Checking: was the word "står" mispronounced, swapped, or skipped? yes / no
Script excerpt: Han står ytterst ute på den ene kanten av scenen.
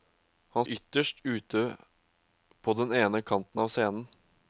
yes